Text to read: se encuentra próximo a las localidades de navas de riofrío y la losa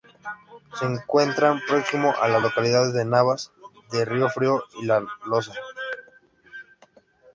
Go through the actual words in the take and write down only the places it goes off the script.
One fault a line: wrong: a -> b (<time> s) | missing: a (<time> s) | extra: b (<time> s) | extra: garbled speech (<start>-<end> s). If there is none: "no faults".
no faults